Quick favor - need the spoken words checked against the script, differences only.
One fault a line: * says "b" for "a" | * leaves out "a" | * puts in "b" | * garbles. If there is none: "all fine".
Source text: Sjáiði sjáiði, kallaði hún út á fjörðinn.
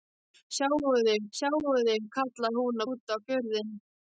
all fine